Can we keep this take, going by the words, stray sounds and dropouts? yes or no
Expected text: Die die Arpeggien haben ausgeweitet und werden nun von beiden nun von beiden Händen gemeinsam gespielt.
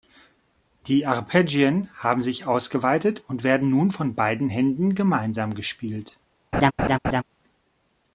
no